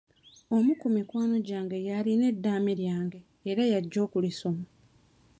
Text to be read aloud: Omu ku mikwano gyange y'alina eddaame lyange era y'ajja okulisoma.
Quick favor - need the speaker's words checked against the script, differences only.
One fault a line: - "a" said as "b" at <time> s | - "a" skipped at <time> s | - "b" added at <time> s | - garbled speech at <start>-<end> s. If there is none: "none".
none